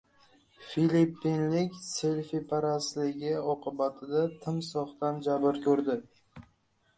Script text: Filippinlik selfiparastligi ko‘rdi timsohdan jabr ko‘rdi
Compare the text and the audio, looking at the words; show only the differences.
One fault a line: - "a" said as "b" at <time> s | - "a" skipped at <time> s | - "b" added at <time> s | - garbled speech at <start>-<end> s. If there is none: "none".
- "ko‘rdi" said as "oqibatida" at 3.6 s